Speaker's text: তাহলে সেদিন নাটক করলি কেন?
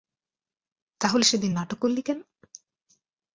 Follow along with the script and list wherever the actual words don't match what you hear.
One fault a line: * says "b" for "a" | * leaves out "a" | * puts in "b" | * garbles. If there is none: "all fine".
all fine